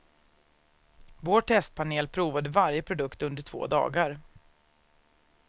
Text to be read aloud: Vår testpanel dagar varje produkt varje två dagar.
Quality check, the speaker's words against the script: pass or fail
fail